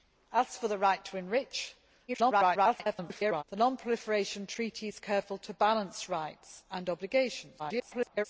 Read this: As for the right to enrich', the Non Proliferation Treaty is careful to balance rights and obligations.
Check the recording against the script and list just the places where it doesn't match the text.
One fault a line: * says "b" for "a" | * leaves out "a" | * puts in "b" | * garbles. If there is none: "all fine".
* garbles
* garbles